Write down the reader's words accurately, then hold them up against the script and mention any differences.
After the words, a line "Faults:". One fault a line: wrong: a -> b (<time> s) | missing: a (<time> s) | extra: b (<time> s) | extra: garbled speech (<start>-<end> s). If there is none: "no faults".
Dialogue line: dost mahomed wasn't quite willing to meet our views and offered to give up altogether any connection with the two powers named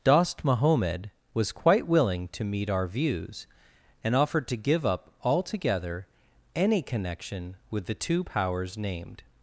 dost mahomed was quite willing to meet our views and offered to give up altogether any connection with the two powers named
Faults:
wrong: wasn't -> was (1.3 s)